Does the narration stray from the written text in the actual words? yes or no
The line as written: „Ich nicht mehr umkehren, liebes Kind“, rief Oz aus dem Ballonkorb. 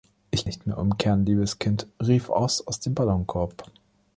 no